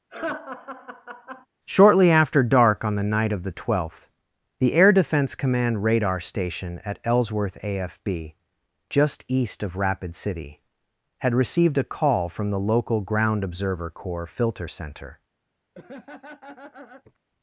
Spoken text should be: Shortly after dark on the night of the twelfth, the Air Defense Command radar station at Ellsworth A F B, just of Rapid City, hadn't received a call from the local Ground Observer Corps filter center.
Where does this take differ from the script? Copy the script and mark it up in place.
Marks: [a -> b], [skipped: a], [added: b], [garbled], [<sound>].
[laugh] Shortly after dark on the night of the twelfth, the Air Defense Command radar station at Ellsworth A F B, just [added: east] of Rapid City, [hadn't -> had] received a call from the local Ground Observer Corps filter center. [laugh]